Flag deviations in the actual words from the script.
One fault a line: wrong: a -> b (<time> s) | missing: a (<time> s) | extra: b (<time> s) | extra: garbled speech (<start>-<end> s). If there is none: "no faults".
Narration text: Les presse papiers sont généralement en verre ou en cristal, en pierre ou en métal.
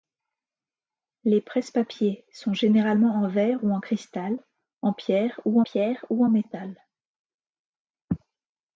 extra: pierre ou (5.6 s)